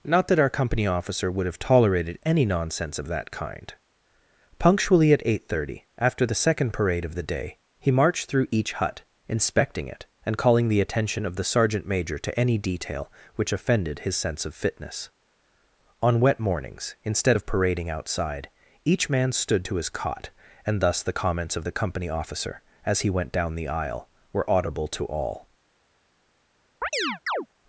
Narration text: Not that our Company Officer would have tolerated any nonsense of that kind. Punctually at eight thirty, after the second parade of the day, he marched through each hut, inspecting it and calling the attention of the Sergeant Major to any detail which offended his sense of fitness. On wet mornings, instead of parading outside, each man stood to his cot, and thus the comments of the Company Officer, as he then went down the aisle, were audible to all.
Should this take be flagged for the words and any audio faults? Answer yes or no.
yes